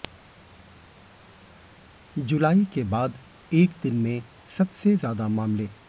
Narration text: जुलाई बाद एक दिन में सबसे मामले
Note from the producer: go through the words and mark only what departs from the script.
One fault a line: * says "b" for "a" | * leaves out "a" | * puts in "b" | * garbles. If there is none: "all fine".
* puts in "के"
* puts in "ज्यादा"